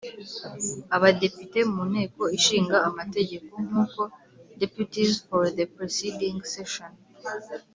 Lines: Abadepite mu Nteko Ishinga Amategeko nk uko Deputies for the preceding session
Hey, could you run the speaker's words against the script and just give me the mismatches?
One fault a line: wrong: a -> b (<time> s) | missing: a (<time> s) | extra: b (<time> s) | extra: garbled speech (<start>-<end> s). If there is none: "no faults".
no faults